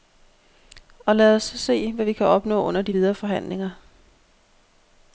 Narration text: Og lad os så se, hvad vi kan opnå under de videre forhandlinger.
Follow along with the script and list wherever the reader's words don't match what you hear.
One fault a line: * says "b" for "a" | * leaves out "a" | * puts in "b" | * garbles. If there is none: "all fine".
all fine